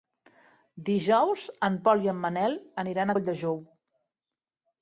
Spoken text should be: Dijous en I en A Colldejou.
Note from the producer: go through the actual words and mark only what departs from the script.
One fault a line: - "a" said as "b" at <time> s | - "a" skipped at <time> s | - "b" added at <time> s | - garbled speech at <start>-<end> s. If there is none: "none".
- "Pol" added at 1.9 s
- "Manel aniran" added at 2.2 s